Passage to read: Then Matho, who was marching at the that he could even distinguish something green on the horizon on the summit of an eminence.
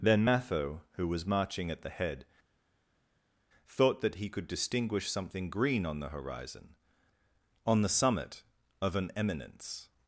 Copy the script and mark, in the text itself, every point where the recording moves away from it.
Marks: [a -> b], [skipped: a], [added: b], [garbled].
Then Matho, who was marching at the [added: head thought] that he could [skipped: even] distinguish something green on the horizon on the summit of an eminence.